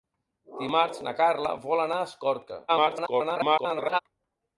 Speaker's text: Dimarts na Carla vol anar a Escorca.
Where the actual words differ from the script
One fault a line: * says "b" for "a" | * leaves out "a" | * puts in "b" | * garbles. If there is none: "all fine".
* garbles